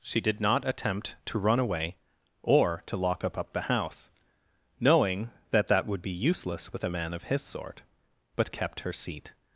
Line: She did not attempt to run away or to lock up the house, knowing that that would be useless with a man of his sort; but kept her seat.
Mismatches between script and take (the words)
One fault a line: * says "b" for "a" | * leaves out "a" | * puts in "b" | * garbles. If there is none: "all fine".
* puts in "up"